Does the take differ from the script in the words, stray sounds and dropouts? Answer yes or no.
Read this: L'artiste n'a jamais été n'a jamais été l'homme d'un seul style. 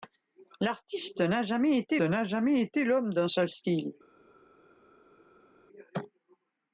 no